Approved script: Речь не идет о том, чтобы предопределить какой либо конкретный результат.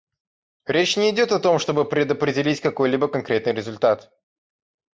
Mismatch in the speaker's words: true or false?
false